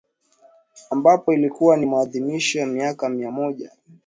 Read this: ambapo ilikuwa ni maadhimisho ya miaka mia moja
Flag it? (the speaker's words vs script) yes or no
no